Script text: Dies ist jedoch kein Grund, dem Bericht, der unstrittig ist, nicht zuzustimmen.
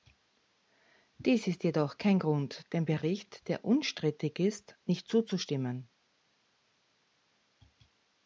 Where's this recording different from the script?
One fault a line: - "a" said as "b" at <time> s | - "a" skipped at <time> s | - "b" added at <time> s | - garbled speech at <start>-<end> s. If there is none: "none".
none